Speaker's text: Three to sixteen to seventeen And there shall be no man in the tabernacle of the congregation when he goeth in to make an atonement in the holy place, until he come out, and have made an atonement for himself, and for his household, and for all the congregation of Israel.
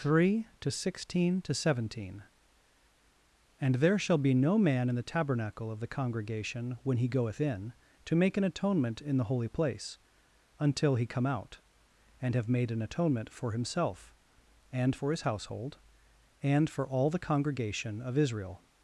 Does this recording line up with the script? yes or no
yes